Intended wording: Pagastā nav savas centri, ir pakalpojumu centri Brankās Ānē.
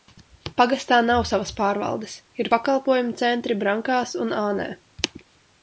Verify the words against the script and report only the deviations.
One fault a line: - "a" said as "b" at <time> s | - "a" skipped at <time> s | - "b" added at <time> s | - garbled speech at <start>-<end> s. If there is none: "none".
- "centri" said as "pārvaldes" at 1.6 s
- "un" added at 4.3 s